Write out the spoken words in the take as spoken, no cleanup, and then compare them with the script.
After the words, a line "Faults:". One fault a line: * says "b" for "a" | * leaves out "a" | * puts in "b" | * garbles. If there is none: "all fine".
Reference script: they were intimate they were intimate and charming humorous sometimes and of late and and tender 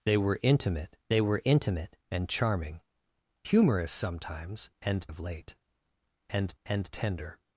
they were intimate they were intimate and charming humorous sometimes and of late and and tender
Faults:
all fine